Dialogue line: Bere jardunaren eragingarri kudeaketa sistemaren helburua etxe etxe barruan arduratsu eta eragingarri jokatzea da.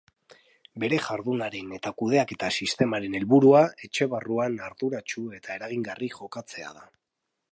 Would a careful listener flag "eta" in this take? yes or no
no